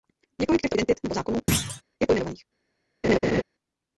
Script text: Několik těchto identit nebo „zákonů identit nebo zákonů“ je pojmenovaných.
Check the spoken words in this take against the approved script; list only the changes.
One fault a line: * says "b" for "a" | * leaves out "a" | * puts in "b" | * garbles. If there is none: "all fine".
* leaves out "identit nebo zákonů"